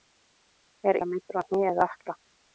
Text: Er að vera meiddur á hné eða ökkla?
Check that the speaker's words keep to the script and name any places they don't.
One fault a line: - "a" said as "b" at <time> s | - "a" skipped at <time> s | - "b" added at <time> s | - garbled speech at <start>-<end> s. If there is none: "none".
none